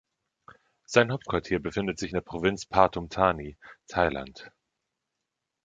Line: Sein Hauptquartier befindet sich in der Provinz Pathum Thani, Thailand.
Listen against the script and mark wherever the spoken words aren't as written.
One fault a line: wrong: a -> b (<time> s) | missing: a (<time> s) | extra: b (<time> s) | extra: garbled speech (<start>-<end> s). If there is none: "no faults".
no faults